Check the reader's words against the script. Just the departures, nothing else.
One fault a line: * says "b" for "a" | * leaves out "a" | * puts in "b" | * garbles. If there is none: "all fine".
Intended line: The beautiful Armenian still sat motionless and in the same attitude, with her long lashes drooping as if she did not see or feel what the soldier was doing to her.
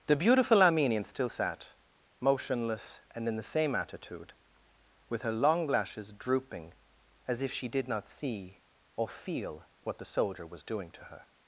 all fine